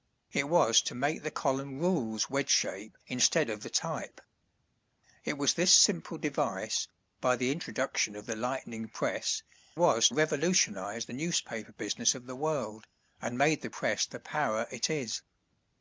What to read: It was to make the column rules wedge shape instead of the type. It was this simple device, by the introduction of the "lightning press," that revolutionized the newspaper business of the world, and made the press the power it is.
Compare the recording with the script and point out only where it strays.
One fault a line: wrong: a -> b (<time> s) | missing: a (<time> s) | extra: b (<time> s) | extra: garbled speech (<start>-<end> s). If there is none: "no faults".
wrong: that -> was (9.8 s)